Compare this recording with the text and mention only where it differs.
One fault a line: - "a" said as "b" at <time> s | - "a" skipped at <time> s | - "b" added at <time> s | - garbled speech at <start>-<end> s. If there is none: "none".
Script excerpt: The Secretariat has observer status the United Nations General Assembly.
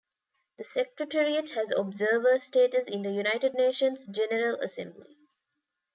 - "in" added at 2.9 s